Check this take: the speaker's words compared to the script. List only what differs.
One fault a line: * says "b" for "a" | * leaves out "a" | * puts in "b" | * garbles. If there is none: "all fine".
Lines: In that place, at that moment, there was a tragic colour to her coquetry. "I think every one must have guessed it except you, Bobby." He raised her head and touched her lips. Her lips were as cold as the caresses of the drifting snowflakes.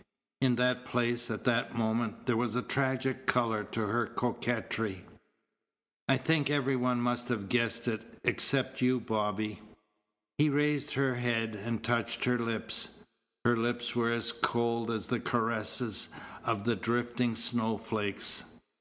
all fine